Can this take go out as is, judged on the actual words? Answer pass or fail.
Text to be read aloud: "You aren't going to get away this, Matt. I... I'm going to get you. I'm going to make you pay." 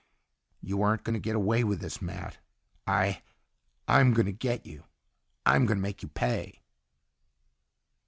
fail